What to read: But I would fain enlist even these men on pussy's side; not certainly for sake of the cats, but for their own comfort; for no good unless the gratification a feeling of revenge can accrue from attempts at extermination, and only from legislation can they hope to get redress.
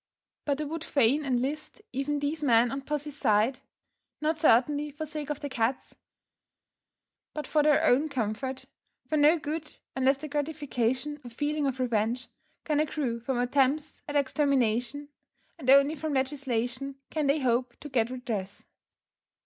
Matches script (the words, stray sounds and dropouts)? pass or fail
pass